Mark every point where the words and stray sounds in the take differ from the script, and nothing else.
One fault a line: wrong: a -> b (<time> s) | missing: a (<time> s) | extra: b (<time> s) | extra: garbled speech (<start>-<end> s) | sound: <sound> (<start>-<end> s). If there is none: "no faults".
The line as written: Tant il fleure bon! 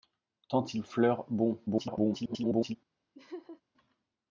extra: garbled speech (1.7-2.8 s)
sound: laugh (3.1-3.6 s)